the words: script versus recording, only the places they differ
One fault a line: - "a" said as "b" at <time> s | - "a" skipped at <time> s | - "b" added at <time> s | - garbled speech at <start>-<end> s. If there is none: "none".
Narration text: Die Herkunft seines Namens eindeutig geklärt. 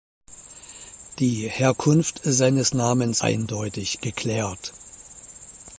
none